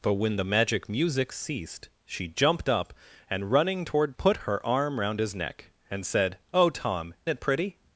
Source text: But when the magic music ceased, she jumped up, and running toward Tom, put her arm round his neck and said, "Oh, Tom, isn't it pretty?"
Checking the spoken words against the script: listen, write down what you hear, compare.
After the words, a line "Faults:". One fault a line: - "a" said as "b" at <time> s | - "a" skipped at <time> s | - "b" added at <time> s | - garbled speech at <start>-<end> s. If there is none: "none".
But when the magic music ceased, she jumped up, and running toward Put her arm round his neck and said, "Oh, Tom, it pretty?"
Faults:
- "Tom" skipped at 4.2 s
- "isn't" skipped at 7.1 s